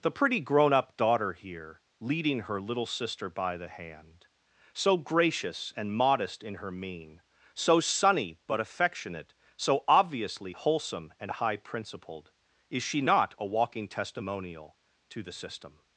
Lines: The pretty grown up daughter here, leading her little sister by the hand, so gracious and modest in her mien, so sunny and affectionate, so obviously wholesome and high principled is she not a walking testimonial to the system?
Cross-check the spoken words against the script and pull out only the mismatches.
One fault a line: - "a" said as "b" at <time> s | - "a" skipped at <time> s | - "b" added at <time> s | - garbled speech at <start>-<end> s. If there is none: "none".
- "and" said as "but" at 8.5 s